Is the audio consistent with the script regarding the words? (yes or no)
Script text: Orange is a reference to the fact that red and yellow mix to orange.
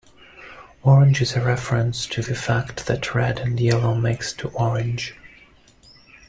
yes